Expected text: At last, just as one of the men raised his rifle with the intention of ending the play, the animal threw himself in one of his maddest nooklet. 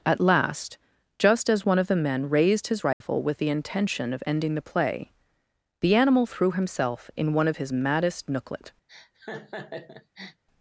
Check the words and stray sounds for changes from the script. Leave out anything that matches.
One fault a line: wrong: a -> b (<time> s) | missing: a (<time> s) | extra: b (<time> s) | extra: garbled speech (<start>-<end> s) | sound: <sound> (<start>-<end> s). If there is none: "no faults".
sound: dropout (2.9-3.0 s)
sound: laugh (8.9-10.4 s)